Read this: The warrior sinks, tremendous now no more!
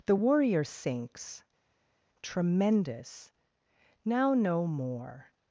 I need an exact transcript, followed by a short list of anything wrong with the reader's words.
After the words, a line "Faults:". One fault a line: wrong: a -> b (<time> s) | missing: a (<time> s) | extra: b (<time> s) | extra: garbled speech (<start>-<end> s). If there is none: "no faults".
The warrior sinks, tremendous now no more!
Faults:
no faults